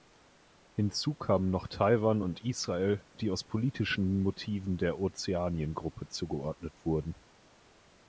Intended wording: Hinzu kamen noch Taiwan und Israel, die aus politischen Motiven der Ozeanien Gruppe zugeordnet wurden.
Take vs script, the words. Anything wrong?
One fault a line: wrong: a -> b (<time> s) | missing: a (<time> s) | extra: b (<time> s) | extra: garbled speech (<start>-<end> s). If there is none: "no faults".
no faults